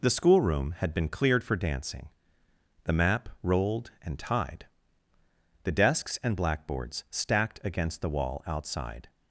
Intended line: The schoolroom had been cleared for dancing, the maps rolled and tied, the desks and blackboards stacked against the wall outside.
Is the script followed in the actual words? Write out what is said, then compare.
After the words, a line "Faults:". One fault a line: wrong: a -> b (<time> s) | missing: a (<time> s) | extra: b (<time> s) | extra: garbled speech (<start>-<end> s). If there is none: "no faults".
The schoolroom had been cleared for dancing, the map rolled and tied, the desks and blackboards stacked against the wall outside.
Faults:
wrong: maps -> map (2.9 s)